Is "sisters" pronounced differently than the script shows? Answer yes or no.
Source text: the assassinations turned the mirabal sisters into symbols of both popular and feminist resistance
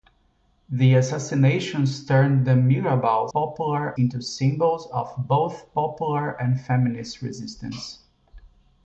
yes